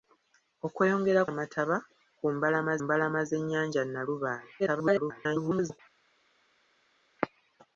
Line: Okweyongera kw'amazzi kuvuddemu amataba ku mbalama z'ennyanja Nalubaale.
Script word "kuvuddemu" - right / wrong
wrong